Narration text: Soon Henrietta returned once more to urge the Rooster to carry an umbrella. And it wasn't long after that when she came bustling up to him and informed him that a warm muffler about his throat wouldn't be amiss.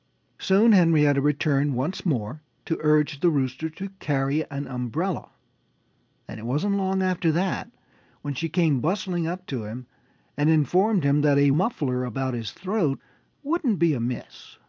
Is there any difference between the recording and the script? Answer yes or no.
yes